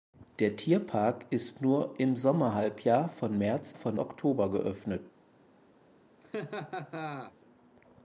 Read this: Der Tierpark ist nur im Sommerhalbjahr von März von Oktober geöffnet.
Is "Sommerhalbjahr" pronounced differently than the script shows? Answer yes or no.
no